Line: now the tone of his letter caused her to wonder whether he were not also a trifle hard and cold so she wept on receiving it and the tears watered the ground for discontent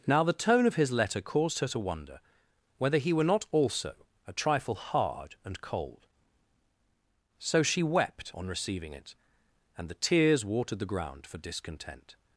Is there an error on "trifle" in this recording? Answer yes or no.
no